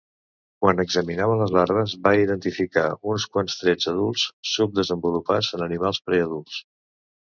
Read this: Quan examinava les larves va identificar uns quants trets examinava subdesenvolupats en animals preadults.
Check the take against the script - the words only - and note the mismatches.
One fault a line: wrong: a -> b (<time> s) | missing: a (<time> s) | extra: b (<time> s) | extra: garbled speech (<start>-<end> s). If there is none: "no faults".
wrong: examinava -> adults (3.9 s)